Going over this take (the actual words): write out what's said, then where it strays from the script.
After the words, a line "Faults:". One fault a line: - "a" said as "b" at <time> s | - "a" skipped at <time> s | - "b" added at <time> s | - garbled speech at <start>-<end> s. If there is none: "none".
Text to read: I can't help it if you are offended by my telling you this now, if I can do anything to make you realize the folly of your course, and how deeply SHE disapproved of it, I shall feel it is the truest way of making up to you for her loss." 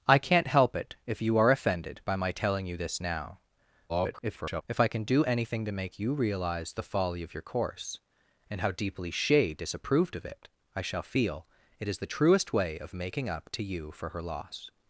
I can't help it if you are offended by my telling you this now, [garbled] if I can do anything to make you realize the folly of your course, and how deeply SHE disapproved of it, I shall feel it is the truest way of making up to you for her loss."
Faults:
- garbled speech at 3.9-4.6 s